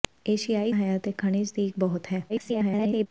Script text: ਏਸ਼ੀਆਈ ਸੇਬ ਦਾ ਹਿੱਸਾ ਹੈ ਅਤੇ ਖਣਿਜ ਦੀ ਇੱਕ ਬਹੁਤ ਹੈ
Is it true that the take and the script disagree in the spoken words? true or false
true